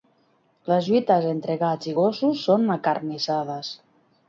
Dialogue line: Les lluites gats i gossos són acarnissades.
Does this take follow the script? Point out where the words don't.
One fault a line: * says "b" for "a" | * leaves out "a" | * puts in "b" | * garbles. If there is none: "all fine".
* puts in "entre"